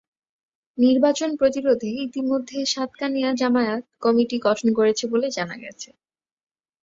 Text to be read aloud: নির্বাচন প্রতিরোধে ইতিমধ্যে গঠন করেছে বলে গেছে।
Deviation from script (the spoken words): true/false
true